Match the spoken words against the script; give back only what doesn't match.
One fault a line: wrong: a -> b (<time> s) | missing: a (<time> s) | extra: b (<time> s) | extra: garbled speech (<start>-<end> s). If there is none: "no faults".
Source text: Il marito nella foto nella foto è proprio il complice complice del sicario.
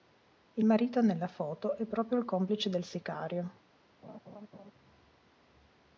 missing: nella foto (1.7 s)
missing: complice (2.7 s)